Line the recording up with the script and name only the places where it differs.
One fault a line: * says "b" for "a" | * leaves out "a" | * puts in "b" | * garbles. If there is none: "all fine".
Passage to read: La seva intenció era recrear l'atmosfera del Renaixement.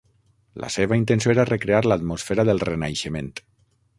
all fine